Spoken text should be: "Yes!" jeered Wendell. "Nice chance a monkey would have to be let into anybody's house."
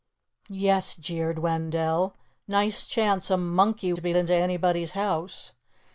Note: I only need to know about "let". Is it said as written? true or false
false